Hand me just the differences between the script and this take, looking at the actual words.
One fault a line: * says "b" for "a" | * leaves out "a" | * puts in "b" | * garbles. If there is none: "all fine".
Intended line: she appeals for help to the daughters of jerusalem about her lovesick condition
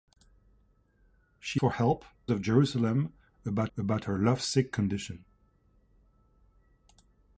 * leaves out "appeals"
* leaves out "to the daughters"
* puts in "about"